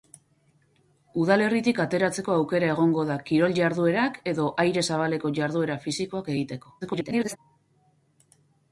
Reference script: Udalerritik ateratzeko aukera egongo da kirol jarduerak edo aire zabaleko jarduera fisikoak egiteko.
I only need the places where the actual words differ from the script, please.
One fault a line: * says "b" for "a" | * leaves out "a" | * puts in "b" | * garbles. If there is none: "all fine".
* garbles